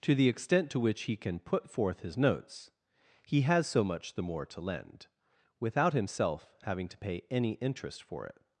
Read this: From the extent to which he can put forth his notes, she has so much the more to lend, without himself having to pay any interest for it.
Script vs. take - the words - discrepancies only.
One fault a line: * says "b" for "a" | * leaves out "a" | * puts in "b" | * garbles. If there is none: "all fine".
* says "To" for "From"
* says "he" for "she"